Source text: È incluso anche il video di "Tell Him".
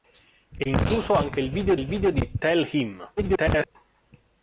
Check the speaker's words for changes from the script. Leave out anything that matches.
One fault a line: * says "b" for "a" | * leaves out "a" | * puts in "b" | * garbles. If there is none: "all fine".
* puts in "il video"
* garbles